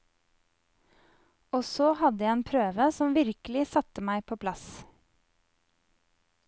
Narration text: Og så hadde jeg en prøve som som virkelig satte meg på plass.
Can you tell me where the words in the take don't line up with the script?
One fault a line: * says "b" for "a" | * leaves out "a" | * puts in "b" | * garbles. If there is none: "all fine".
* leaves out "som"